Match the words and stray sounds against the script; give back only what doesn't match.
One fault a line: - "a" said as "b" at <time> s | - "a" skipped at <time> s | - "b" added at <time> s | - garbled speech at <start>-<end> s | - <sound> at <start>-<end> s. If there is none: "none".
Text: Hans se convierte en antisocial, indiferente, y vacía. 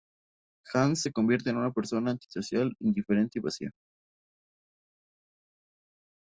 - "una persona" added at 1.6 s